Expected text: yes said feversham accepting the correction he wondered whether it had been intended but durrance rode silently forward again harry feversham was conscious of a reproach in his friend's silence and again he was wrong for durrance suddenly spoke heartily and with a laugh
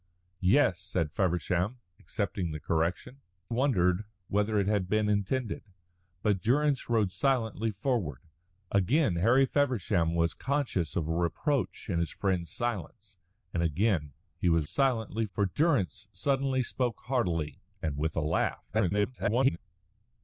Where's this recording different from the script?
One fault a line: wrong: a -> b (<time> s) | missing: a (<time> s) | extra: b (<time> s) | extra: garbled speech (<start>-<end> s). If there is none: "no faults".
missing: he (3.2 s)
wrong: wrong -> silently (14.7 s)
extra: garbled speech (18.7-19.6 s)